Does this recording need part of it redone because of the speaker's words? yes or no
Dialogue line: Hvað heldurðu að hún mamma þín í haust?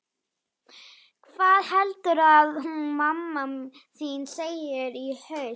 yes